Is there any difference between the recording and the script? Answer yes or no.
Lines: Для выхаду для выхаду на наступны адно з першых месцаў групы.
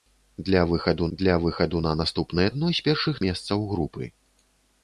no